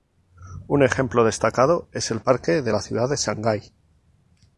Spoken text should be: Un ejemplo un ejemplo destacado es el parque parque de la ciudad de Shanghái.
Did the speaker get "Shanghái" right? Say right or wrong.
right